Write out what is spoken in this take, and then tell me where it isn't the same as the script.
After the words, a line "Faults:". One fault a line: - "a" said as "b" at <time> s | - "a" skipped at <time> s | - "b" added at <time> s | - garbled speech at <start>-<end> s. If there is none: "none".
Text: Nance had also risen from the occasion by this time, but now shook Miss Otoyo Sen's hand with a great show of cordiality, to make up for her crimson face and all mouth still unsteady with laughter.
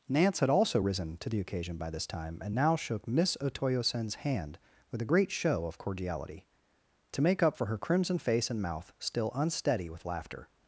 Nance had also risen to the occasion by this time, and now shook Miss Otoyo Sen's hand with a great show of cordiality, to make up for her crimson face and mouth still unsteady with laughter.
Faults:
- "from" said as "to" at 1.2 s
- "but" said as "and" at 2.4 s
- "all" skipped at 8.6 s